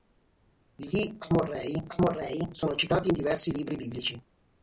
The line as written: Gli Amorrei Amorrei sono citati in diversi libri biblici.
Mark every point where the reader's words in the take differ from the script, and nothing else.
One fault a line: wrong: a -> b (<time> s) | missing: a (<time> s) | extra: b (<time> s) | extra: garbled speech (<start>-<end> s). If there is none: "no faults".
no faults